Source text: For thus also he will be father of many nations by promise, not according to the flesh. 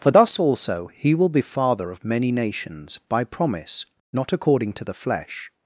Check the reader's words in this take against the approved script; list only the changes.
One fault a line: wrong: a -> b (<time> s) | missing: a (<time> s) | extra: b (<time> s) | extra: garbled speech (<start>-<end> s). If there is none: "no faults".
no faults